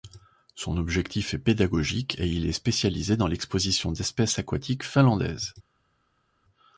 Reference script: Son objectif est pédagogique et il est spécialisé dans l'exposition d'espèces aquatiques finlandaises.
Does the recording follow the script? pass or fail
pass